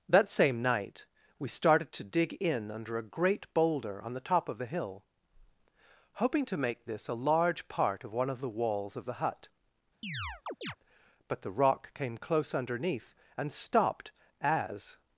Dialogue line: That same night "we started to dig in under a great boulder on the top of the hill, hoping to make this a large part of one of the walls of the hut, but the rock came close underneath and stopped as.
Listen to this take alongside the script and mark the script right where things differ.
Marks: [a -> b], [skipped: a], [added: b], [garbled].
That same night "we started to dig in under a great boulder on the top of the hill, hoping to make this a large part of one of the walls of the hut, but the rock came close underneath and stopped as.